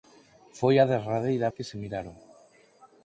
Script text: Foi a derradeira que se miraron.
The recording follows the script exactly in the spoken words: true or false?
true